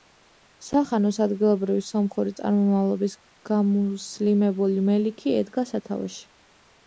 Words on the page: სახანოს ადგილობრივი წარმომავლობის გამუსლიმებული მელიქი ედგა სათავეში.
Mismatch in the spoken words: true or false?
true